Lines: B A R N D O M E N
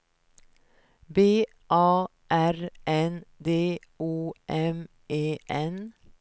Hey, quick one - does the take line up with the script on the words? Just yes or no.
yes